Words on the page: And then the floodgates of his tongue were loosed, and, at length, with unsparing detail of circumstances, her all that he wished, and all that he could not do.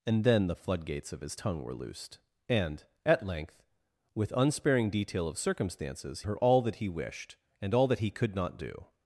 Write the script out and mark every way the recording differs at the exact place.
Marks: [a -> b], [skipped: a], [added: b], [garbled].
And then the floodgates of his tongue were loosed, and, at length, with unsparing detail of circumstances, her all that he wished, and all that he could not do.